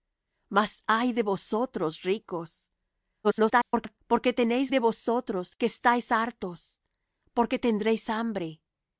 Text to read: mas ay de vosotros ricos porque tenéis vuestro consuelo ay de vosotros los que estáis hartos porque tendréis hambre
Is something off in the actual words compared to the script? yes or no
yes